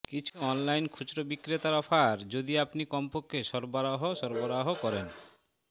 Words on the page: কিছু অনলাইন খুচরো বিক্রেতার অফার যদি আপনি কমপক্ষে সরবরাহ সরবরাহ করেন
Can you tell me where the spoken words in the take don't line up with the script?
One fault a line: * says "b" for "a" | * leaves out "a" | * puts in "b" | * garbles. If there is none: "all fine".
all fine